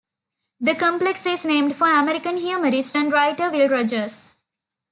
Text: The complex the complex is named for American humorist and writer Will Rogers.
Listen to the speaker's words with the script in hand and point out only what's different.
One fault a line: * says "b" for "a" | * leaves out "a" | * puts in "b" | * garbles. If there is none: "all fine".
* leaves out "the complex"